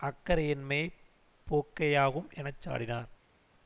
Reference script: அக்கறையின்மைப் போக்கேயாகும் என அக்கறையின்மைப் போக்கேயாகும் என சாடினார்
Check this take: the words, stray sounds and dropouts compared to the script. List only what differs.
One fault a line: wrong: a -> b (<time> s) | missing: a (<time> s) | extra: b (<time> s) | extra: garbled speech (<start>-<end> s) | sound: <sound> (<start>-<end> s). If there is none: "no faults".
missing: அக்கறையின்மைப் போக்கேயாகும் என (2.5 s)